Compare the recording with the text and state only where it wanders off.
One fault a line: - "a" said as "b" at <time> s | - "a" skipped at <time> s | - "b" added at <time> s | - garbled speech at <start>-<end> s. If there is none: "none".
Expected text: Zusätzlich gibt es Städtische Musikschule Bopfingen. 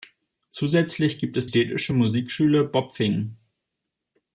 none